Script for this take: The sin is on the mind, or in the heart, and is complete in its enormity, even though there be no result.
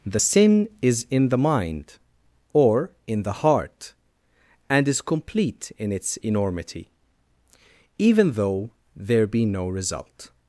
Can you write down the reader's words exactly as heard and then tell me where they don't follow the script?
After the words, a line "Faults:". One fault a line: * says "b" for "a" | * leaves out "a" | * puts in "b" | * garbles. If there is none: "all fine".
The sin is in the mind, or in the heart, and is complete in its enormity, even though there be no result.
Faults:
* says "in" for "on"